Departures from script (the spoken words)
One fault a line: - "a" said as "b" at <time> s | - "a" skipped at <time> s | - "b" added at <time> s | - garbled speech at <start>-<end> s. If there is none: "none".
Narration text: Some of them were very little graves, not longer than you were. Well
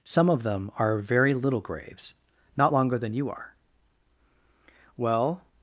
- "were" said as "are" at 0.8 s
- "were" said as "are" at 3.3 s